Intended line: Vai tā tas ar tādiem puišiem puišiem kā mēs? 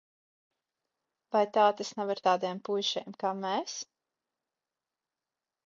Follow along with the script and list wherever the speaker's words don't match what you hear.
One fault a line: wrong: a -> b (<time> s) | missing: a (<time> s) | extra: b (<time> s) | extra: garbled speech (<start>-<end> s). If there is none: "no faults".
extra: nav (2.0 s)
missing: puišiem (3.2 s)